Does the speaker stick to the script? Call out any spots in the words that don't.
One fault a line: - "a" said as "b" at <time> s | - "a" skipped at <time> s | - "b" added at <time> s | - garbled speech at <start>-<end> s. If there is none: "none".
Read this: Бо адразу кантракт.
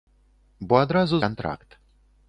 none